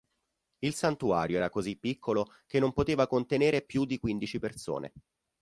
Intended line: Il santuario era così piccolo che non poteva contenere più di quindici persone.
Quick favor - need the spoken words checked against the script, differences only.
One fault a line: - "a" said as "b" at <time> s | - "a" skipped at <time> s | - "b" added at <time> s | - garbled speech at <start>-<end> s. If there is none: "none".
none